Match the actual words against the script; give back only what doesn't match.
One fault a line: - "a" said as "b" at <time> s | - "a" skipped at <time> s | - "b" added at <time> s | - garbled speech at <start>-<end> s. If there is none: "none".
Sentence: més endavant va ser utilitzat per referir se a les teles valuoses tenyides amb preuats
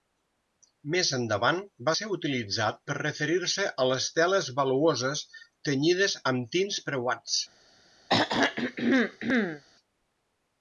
- "tints" added at 6.6 s